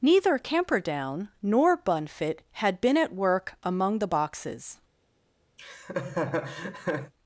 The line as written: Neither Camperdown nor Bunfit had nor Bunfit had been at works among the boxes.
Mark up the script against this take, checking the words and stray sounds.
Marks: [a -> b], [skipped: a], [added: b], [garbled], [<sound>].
Neither Camperdown nor Bunfit had [skipped: nor Bunfit had] been at [works -> work] among the boxes. [laugh]